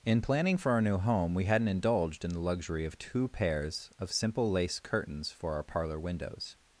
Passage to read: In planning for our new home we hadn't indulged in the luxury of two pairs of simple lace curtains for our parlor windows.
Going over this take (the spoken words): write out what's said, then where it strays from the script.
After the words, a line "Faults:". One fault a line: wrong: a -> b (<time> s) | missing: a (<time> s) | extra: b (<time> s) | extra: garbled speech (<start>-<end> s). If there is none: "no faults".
In planning for our new home we hadn't indulged in the luxury of two pairs of simple lace curtains for our parlor windows.
Faults:
no faults